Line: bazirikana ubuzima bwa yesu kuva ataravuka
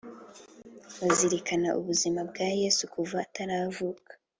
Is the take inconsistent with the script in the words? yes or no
no